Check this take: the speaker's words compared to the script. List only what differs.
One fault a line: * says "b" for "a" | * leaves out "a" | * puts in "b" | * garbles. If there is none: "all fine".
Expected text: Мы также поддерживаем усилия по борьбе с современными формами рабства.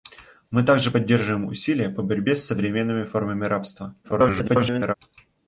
* garbles